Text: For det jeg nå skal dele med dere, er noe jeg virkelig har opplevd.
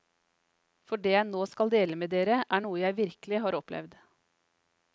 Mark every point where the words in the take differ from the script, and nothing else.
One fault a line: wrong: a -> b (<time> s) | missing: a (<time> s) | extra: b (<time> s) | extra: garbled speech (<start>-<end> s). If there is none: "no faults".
no faults